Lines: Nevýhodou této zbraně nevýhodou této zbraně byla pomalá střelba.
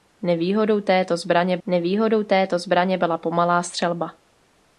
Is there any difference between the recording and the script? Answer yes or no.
no